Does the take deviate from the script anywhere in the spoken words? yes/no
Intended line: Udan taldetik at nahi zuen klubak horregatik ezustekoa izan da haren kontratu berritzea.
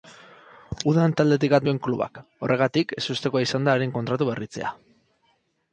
yes